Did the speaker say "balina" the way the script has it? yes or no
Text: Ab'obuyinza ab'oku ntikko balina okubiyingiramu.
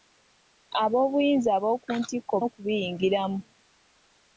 no